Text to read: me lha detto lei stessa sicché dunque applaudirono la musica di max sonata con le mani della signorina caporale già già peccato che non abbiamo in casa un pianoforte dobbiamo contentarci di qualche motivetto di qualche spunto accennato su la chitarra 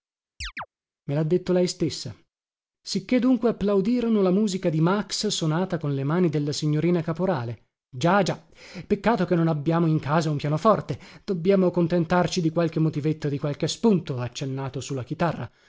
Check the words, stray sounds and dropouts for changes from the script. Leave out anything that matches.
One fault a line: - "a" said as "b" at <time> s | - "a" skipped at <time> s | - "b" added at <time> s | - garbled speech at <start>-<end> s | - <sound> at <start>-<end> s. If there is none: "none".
- chirp at 0.4-0.7 s